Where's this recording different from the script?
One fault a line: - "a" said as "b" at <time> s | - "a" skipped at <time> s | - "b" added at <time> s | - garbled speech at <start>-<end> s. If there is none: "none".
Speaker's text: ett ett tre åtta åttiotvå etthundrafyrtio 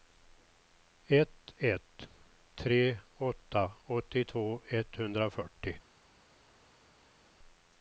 none